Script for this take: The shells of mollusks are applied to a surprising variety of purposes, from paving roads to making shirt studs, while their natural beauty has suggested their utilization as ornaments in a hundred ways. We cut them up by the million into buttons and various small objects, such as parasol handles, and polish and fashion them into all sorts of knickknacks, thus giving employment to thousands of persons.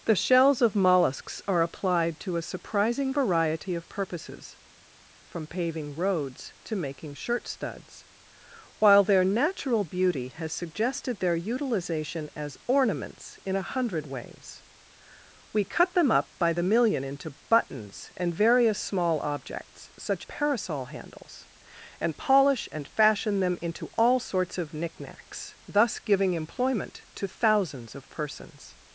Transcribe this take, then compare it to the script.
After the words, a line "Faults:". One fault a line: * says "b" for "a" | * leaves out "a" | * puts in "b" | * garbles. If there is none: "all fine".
The shells of mollusks are applied to a surprising variety of purposes, from paving roads to making shirt studs, while their natural beauty has suggested their utilization as ornaments in a hundred ways. We cut them up by the million into buttons and various small objects, such parasol handles, and polish and fashion them into all sorts of knickknacks, thus giving employment to thousands of persons.
Faults:
* leaves out "as"